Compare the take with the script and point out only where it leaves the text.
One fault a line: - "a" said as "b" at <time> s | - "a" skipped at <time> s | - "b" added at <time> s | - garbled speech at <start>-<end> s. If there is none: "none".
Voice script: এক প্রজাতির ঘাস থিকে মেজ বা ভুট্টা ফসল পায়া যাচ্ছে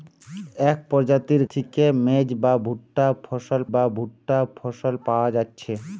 - "ঘাস" skipped at 1.4 s
- "বা ভুট্টা ফসল" added at 3.7 s